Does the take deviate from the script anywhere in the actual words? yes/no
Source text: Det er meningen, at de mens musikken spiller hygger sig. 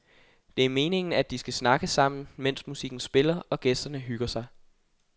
yes